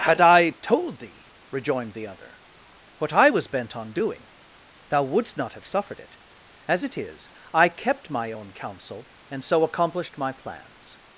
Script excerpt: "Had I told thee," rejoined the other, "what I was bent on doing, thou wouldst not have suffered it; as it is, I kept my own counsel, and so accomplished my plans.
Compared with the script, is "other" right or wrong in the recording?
right